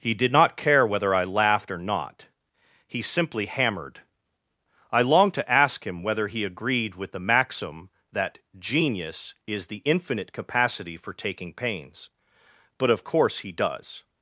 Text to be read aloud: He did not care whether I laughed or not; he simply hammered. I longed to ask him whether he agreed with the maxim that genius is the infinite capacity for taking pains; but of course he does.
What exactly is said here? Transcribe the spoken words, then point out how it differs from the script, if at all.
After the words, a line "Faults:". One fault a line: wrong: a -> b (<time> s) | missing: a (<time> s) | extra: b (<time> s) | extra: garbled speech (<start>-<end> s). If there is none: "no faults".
He did not care whether I laughed or not; he simply hammered. I longed to ask him whether he agreed with the maxim that genius is the infinite capacity for taking pains; but of course he does.
Faults:
no faults